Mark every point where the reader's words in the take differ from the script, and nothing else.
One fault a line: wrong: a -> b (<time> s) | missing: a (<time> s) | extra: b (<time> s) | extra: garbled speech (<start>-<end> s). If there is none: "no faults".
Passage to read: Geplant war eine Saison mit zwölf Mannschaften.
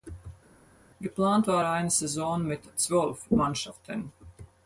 no faults